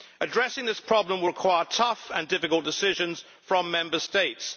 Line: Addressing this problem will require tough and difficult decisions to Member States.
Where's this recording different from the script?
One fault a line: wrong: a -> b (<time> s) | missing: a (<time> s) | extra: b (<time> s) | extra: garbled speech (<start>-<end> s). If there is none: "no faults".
wrong: to -> from (3.4 s)